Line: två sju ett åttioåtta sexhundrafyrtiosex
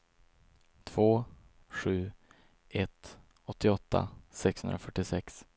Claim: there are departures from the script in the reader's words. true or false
false